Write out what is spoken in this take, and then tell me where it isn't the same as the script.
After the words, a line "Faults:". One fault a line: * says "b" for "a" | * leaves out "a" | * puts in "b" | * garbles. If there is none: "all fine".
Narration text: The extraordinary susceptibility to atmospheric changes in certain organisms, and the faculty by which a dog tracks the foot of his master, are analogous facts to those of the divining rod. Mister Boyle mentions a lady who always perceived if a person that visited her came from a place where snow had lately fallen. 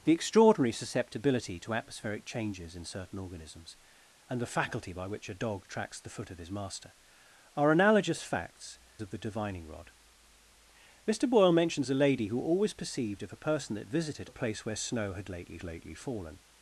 The extraordinary susceptibility to atmospheric changes in certain organisms, and the faculty by which a dog tracks the foot of his master, are analogous facts of the divining rod. Mister Boyle mentions a lady who always perceived if a person that visited a place where snow had lately lately fallen.
Faults:
* leaves out "to those"
* leaves out "her came from"
* puts in "lately"